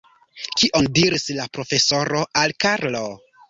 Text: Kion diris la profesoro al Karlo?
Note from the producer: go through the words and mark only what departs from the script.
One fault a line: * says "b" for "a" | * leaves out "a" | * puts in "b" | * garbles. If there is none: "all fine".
all fine